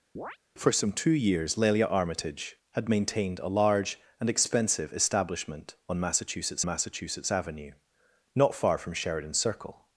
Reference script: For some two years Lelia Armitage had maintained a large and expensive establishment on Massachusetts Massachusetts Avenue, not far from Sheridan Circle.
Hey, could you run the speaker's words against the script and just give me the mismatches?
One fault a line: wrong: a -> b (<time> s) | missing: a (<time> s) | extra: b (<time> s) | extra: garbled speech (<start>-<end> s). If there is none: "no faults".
no faults